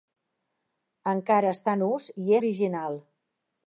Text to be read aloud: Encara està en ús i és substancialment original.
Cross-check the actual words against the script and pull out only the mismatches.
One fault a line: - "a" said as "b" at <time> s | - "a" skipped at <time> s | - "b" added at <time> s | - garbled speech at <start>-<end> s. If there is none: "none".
- "és substancialment" skipped at 2.4 s